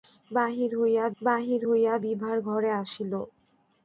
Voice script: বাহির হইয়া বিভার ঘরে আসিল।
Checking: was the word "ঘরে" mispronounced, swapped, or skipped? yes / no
no